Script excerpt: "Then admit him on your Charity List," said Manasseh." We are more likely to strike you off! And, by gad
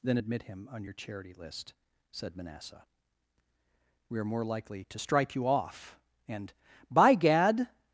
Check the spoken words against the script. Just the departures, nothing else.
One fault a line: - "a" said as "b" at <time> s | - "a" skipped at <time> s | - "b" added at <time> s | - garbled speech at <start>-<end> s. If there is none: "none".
none